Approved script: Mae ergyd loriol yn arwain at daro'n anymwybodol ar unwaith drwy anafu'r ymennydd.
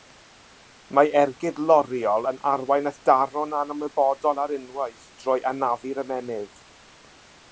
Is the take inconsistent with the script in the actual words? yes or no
no